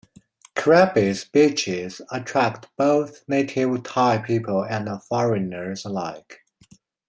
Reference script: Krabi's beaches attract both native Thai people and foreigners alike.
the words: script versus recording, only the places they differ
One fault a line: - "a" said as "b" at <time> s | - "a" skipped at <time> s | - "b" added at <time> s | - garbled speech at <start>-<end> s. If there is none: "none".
none